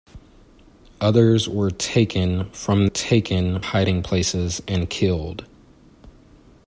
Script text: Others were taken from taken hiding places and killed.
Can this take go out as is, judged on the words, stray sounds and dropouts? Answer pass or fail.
pass